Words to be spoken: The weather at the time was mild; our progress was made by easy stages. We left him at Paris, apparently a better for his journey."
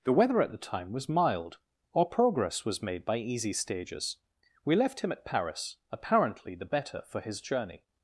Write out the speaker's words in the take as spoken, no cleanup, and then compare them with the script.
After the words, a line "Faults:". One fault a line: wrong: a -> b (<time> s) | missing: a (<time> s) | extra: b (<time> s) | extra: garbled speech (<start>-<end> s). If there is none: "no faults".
The weather at the time was mild; our progress was made by easy stages. We left him at Paris, apparently the better for his journey."
Faults:
wrong: a -> the (6.5 s)